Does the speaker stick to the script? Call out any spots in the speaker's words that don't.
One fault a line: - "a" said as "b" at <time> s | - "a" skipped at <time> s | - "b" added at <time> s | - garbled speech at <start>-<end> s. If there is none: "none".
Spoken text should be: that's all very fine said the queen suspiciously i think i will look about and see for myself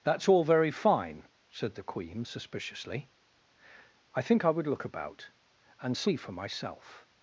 - "will" said as "would" at 4.5 s